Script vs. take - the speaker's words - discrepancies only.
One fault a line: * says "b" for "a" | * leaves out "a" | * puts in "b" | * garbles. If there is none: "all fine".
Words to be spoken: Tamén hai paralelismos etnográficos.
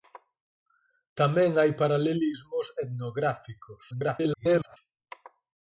* garbles